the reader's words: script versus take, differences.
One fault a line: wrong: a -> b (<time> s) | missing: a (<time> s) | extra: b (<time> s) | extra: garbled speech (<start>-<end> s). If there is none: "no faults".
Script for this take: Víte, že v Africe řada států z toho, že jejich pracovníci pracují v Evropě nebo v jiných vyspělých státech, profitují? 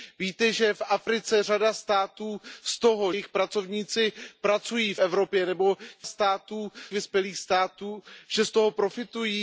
missing: že (3.1 s)
wrong: jiných -> států (6.0 s)